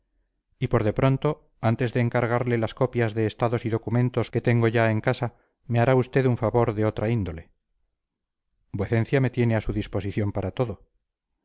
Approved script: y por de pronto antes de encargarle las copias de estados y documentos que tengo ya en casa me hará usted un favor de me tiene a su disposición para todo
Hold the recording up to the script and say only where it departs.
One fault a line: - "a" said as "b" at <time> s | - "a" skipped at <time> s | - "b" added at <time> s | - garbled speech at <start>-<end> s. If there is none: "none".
- "otra índole vuecencia" added at 6.8 s